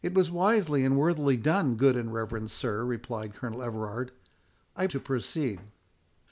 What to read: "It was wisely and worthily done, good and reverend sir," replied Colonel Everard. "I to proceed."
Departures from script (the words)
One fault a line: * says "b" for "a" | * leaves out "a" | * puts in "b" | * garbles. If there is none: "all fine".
all fine